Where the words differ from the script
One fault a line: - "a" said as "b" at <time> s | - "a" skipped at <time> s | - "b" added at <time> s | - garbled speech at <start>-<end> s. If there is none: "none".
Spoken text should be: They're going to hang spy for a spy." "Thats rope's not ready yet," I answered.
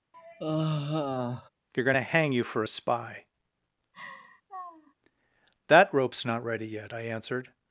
- "spy" said as "you" at 2.3 s
- "Thats" said as "That" at 5.7 s